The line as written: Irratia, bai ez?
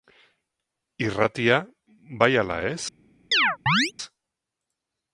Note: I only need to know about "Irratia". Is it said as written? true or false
true